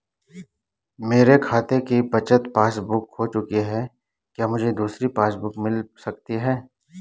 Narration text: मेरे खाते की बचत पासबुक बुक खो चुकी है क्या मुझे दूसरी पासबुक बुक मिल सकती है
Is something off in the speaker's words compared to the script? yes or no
no